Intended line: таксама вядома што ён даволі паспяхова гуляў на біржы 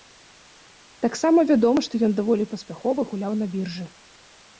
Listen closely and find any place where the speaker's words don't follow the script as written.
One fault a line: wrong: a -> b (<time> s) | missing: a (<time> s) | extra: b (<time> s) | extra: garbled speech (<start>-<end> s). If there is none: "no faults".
no faults